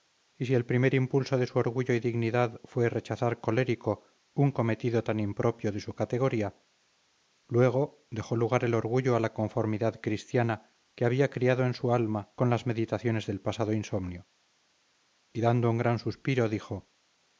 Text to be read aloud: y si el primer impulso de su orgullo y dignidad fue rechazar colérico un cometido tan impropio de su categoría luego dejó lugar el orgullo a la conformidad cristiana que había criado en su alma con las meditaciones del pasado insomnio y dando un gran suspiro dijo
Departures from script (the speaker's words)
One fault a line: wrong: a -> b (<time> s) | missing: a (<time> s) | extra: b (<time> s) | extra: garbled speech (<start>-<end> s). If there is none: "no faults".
no faults